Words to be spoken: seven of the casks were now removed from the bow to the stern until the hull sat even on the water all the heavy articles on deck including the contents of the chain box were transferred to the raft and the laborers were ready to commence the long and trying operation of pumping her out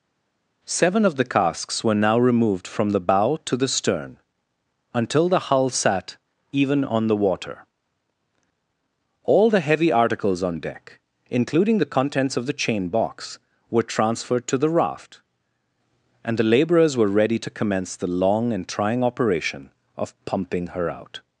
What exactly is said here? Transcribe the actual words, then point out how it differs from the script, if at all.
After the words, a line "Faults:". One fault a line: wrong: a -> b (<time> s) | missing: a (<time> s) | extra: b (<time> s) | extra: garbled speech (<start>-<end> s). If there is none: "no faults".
seven of the casks were now removed from the bow to the stern until the hull sat even on the water all the heavy articles on deck including the contents of the chain box were transferred to the raft and the laborers were ready to commence the long and trying operation of pumping her out
Faults:
no faults